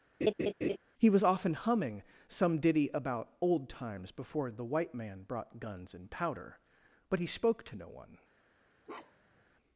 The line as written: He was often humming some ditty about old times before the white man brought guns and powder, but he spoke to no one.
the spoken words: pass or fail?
pass